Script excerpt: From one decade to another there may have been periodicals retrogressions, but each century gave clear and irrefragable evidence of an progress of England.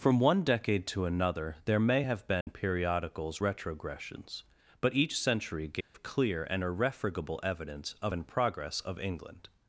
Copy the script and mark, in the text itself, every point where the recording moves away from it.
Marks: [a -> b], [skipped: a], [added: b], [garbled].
From one decade to another there may have been periodicals retrogressions, but each century gave clear and irrefragable evidence of an progress of England.